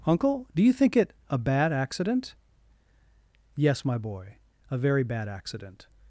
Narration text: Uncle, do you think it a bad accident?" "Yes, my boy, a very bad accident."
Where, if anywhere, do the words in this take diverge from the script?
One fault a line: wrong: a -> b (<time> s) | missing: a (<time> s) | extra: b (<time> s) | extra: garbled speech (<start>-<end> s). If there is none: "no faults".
no faults